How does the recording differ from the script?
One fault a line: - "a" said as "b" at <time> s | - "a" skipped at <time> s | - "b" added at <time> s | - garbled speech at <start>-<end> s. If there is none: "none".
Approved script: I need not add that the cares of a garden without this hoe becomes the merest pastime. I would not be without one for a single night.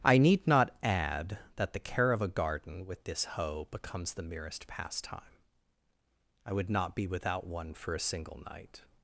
- "cares" said as "care" at 1.8 s
- "without" said as "with" at 2.9 s